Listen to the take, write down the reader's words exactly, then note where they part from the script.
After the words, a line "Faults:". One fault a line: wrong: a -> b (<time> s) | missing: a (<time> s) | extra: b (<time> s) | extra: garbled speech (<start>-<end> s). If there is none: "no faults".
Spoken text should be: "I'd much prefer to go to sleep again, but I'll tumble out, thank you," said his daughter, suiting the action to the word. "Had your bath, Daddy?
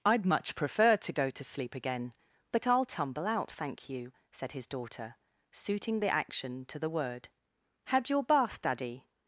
"I'd much prefer to go to sleep again, but I'll tumble out, thank you," said his daughter, suiting the action to the word. "Had your bath, Daddy?
Faults:
no faults